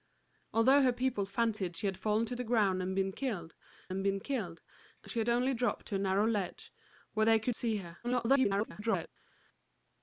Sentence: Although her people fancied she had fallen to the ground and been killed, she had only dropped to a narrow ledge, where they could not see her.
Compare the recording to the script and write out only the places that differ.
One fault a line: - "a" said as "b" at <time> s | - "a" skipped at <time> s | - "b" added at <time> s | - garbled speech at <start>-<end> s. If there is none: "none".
- "and been killed" added at 3.9 s
- "not" skipped at 7.5 s
- garbled speech at 8.0-9.1 s